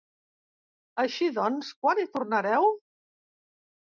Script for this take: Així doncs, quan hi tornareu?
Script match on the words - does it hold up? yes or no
yes